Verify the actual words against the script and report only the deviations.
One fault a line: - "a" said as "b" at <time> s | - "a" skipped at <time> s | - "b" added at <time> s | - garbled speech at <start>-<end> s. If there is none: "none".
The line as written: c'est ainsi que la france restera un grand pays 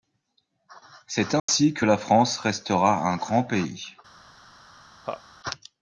none